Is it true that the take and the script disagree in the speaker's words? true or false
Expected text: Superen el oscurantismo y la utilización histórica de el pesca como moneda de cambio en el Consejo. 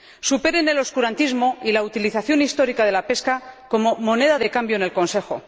true